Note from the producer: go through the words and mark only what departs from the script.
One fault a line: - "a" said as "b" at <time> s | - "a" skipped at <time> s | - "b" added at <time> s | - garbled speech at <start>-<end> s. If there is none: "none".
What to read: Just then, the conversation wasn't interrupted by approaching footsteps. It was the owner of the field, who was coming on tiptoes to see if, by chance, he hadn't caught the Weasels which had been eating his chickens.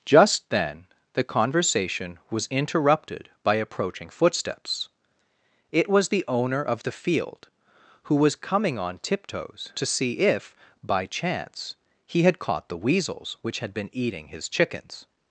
- "wasn't" said as "was" at 2.3 s
- "hadn't" said as "had" at 12.2 s